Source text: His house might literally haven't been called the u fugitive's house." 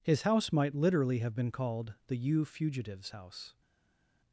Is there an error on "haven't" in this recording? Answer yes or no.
yes